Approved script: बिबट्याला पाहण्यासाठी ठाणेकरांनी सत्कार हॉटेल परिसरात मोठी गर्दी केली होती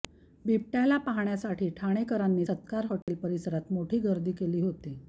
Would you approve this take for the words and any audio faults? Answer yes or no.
no